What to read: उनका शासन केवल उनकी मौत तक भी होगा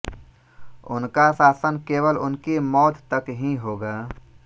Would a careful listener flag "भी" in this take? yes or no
yes